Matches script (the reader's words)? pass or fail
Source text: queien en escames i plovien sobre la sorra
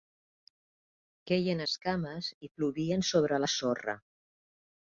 fail